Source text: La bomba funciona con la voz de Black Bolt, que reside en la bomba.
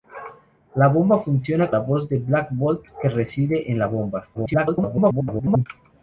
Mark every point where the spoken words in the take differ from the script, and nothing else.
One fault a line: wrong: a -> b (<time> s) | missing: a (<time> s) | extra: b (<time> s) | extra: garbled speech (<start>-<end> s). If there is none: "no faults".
missing: con (1.7 s)
extra: garbled speech (4.3-5.7 s)